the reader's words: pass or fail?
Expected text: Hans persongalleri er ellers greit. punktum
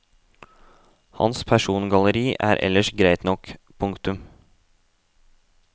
fail